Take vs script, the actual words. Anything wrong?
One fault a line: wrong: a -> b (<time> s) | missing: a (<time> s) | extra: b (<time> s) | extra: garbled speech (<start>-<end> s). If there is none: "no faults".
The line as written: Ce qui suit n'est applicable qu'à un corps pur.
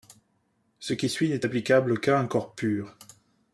no faults